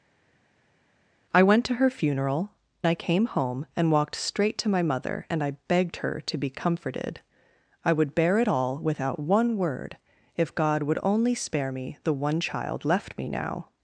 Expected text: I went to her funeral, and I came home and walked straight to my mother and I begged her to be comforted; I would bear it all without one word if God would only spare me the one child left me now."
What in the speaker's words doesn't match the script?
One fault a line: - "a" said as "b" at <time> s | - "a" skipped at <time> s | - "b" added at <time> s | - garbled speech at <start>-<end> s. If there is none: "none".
- "and" skipped at 2.5 s